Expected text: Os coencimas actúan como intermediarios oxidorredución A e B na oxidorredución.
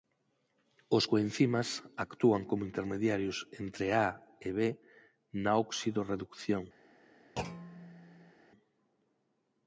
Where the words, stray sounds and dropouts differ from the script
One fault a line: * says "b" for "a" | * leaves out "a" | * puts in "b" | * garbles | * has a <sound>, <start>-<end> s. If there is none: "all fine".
* says "entre" for "oxidorredución"
* has a thud, 7.4-8.3 s